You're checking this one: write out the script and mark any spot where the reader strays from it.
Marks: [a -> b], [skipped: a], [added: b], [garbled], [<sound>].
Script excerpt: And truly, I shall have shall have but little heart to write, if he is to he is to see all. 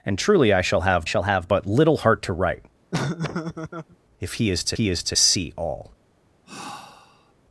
And truly, I shall have shall have but little heart to write, [laugh] if he is to he is to see all. [sigh]